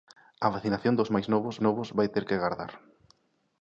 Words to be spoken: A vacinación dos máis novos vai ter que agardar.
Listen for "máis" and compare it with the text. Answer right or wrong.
right